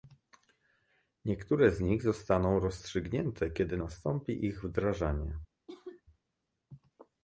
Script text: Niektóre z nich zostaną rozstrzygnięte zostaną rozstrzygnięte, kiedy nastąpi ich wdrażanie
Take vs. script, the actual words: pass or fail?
fail